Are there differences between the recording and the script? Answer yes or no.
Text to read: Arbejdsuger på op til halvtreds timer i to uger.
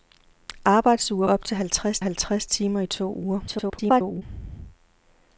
yes